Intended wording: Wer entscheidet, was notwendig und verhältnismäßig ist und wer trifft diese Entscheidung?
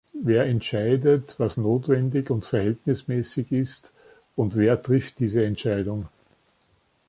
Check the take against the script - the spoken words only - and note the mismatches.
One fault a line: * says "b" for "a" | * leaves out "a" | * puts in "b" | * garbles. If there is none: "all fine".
all fine